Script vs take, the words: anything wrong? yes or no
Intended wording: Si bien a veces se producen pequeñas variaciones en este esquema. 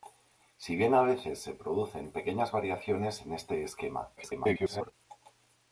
yes